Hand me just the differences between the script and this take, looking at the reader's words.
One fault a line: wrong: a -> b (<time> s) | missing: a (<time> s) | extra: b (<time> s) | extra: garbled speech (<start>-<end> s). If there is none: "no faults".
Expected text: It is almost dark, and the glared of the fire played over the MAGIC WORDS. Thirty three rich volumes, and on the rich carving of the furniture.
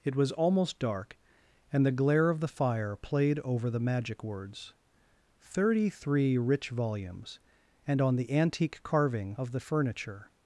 wrong: is -> was (0.1 s)
wrong: glared -> glare (1.9 s)
wrong: rich -> antique (8.3 s)